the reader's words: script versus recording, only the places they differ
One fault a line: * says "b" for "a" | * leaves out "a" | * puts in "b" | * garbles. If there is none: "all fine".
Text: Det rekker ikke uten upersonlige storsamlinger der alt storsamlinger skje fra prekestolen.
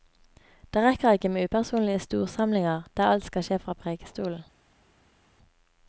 * says "med" for "uten"
* says "skal" for "storsamlinger"